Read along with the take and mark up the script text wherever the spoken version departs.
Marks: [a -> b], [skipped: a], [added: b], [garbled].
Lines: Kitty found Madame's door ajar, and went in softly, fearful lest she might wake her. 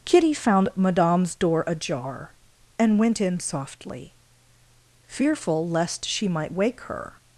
Kitty found Madame's door ajar, and went in softly, fearful lest she might wake her.